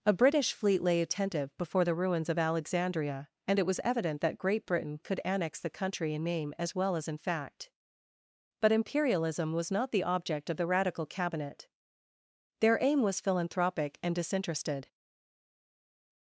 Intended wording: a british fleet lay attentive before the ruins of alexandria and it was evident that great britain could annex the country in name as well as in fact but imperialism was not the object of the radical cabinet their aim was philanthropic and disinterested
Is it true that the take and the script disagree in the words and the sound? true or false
false